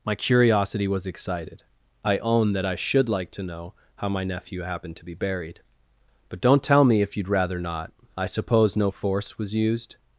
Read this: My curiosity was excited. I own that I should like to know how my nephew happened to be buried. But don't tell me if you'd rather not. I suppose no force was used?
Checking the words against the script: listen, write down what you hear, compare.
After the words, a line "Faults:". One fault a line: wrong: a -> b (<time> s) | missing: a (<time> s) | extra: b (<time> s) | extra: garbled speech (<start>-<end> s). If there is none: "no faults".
My curiosity was excited. I own that I should like to know how my nephew happened to be buried. But don't tell me if you'd rather not. I suppose no force was used?
Faults:
no faults